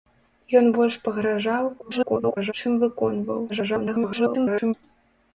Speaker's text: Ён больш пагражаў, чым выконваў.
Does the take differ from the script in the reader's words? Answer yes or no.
yes